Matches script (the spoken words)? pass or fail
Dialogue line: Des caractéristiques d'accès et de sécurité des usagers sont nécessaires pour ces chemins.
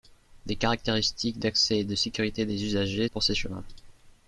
fail